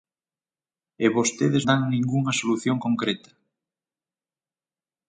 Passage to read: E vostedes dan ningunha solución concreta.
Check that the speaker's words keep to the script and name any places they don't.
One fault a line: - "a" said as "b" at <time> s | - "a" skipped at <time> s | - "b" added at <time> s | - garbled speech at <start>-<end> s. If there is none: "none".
none